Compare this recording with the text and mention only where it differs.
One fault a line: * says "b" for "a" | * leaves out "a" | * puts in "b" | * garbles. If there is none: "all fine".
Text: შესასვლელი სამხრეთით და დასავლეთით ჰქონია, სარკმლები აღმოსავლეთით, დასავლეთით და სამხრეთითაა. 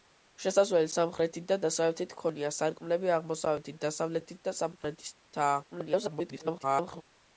* garbles